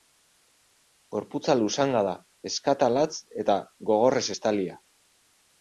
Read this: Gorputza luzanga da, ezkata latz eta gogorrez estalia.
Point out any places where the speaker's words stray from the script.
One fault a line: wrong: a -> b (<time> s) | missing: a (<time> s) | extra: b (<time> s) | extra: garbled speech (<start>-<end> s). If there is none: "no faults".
no faults